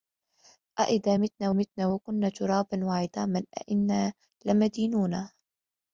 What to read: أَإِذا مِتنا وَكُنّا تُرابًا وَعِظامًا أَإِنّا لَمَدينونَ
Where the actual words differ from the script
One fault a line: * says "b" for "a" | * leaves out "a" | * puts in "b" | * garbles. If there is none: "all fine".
* puts in "مِتنا"